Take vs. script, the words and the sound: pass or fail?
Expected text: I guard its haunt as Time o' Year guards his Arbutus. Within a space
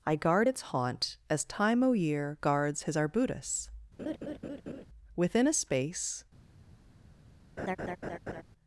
fail